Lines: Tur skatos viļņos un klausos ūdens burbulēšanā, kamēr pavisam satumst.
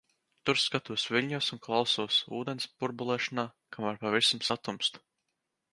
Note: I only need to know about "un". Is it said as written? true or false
true